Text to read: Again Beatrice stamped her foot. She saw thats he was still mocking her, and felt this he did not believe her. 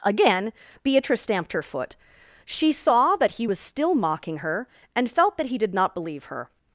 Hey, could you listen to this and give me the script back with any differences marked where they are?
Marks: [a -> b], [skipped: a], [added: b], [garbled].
Again Beatrice stamped her foot. She saw [thats -> that] he was still mocking her, and felt [this -> that] he did not believe her.